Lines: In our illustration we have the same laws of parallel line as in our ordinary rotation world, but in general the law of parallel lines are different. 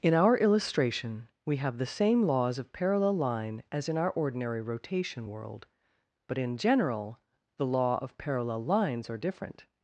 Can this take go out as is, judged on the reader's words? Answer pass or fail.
pass